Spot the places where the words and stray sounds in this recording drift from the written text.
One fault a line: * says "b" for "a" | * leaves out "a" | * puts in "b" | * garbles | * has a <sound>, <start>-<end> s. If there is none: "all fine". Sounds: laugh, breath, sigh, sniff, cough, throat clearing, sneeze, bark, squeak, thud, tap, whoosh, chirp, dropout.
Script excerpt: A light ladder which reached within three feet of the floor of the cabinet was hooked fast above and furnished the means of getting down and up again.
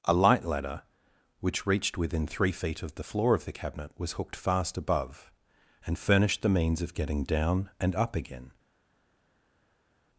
all fine